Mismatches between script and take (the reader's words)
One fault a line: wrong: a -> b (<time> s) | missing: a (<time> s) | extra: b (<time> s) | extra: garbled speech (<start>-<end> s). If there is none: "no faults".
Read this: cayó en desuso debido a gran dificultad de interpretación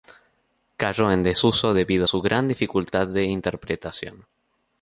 extra: su (2.0 s)